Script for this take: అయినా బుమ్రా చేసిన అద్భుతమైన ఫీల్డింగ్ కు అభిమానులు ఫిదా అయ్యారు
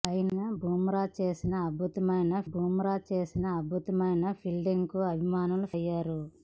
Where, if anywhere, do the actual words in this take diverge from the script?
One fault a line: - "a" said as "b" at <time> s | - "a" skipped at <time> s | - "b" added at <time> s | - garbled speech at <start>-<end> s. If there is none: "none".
- "బుమ్రా చేసిన అద్భుతమైన" added at 2.5 s
- "ఫిదా" skipped at 5.7 s